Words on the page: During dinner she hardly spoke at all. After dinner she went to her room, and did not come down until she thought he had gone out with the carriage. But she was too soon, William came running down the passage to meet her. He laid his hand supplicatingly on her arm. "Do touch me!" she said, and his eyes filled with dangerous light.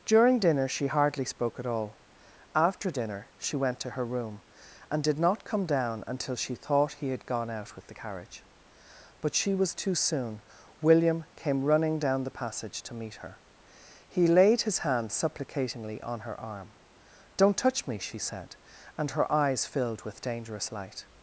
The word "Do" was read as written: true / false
false